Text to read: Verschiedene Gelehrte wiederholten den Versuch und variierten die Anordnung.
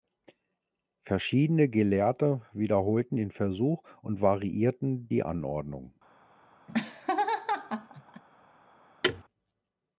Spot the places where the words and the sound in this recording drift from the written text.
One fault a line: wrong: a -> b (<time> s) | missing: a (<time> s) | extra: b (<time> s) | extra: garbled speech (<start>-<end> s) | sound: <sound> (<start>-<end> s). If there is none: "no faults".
sound: laugh (6.7-8.2 s)
sound: thud (9.0-9.2 s)